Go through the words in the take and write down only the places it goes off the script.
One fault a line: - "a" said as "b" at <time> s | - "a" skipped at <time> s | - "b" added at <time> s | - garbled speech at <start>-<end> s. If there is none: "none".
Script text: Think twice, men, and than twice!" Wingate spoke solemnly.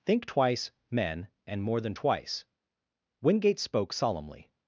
- "more" added at 1.6 s